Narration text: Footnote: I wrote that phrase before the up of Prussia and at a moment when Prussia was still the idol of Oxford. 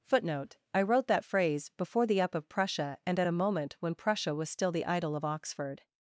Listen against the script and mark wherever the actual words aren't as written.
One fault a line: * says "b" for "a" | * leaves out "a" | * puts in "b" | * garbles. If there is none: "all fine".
all fine